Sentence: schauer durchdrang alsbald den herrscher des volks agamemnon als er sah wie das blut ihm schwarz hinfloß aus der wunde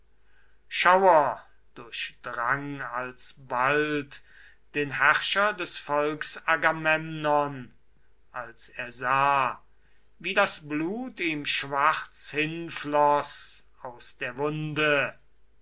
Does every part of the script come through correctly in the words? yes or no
yes